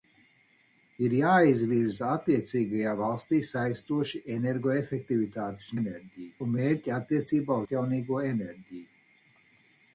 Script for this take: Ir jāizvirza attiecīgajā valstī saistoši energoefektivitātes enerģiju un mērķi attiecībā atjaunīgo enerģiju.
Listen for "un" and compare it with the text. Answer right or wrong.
right